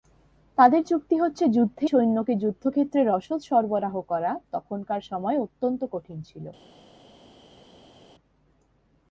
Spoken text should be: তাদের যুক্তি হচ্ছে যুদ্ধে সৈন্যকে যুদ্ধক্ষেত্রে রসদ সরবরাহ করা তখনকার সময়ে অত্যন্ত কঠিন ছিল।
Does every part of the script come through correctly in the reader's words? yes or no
yes